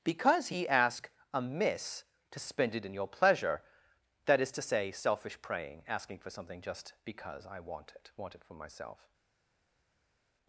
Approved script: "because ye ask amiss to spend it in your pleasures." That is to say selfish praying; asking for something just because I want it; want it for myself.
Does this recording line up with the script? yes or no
no